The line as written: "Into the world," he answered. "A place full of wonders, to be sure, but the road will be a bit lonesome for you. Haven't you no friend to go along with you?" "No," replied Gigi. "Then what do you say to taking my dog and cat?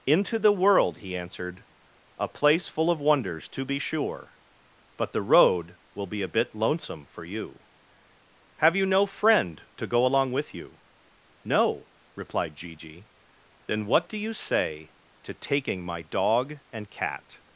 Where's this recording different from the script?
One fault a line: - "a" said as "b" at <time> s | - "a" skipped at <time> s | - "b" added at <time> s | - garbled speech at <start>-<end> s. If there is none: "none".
- "Haven't" said as "Have" at 8.6 s